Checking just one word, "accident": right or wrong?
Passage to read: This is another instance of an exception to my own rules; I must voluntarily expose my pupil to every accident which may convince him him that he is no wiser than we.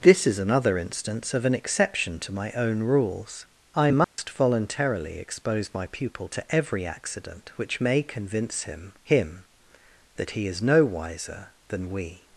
right